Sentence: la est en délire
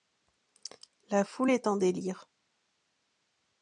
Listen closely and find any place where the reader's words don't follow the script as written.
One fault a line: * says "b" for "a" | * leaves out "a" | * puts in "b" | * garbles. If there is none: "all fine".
* puts in "foule"